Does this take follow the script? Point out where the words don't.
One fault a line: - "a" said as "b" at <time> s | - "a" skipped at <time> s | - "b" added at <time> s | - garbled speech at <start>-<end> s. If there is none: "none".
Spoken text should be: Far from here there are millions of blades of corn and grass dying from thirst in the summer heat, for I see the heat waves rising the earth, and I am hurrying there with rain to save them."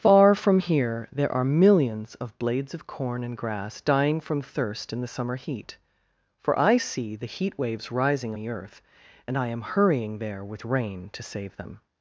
none